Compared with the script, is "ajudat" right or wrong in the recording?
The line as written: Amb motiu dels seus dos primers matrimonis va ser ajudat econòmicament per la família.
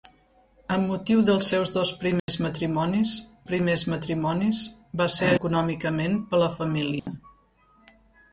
wrong